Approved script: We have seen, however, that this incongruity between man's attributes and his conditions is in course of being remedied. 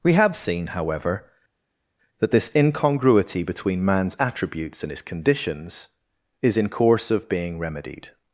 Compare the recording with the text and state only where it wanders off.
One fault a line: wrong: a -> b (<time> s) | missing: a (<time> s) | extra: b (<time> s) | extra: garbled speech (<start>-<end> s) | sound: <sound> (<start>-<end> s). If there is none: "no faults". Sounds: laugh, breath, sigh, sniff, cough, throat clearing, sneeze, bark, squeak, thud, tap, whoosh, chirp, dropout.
no faults